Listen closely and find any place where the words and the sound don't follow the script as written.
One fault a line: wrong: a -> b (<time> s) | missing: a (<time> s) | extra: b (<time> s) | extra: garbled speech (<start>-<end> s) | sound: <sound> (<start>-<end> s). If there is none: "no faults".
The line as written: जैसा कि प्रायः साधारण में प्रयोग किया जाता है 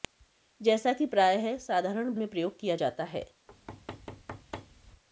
sound: thud (3.5-5.0 s)